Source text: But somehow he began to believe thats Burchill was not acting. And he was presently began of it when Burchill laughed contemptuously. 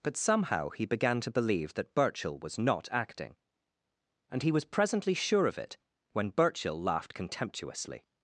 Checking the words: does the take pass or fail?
fail